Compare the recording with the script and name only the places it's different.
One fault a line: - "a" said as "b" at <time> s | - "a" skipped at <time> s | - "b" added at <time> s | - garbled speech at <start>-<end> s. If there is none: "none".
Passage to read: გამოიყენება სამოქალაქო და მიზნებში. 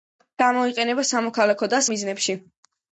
none